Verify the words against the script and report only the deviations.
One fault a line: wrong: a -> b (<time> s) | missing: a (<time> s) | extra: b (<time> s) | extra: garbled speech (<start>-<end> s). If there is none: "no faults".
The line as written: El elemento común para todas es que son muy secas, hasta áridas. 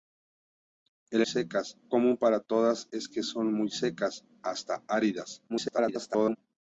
wrong: elemento -> secas (1.2 s)
extra: garbled speech (5.5-6.4 s)